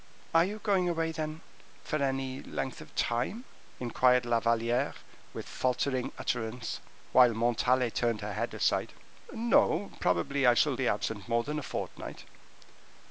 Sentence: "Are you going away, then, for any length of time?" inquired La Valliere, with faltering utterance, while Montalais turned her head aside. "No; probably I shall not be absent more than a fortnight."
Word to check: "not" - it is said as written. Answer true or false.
false